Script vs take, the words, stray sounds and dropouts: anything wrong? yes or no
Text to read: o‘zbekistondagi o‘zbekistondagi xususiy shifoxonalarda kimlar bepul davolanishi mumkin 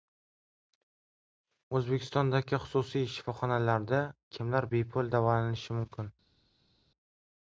yes